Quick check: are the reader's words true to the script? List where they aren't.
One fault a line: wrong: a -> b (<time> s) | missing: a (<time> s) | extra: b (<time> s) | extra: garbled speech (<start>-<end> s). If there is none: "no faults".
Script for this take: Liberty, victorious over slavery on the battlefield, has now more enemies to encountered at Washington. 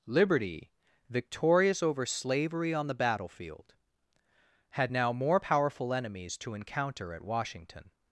wrong: has -> had (4.7 s)
extra: powerful (5.4 s)
wrong: encountered -> encounter (6.5 s)